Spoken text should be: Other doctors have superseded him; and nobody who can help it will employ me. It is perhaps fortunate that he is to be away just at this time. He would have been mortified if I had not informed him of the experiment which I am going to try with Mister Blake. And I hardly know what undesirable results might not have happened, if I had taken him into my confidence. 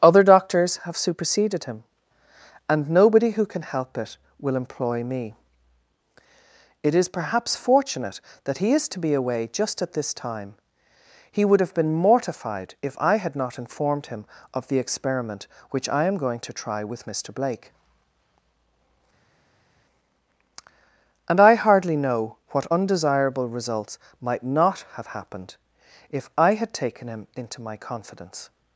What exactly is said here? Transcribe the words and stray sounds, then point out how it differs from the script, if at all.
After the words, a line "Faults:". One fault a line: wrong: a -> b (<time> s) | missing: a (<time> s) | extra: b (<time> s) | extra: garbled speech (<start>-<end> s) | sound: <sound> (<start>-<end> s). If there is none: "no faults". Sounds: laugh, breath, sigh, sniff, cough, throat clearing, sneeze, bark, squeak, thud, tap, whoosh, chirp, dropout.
Other doctors have superseded him; and nobody who can help it will employ me. It is perhaps fortunate that he is to be away just at this time. He would have been mortified if I had not informed him of the experiment which I am going to try with Mister Blake. And I hardly know what undesirable results might not have happened, if I had taken him into my confidence.
Faults:
no faults